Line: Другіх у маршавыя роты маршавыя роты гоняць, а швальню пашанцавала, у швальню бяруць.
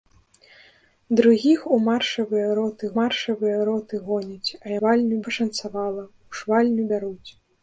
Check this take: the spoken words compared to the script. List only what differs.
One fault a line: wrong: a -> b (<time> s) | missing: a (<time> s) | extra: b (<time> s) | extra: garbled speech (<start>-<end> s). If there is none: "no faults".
no faults